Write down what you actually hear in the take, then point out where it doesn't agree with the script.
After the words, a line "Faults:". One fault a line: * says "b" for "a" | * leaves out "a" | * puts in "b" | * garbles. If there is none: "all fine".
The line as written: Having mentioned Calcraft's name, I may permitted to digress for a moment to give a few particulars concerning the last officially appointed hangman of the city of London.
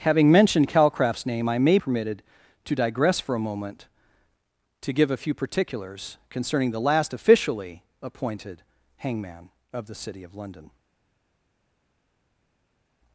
Having mentioned Calcraft's name, I may permitted to digress for a moment to give a few particulars concerning the last officially appointed hangman of the city of London.
Faults:
all fine